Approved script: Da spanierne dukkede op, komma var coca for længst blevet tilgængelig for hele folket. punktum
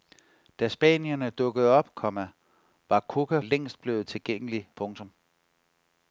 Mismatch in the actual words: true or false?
true